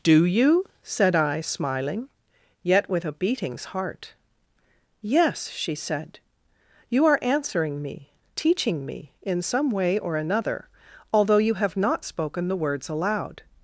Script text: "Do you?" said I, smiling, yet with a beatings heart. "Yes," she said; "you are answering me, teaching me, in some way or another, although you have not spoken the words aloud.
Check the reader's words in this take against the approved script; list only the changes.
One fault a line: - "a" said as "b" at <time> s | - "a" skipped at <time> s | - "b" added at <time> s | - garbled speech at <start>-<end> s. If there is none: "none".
none